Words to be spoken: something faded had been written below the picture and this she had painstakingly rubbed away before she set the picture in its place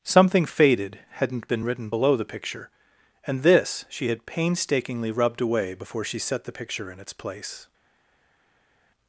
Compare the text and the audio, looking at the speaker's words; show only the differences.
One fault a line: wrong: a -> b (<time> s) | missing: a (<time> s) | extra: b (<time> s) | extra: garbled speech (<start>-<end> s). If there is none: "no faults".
wrong: had -> hadn't (1.1 s)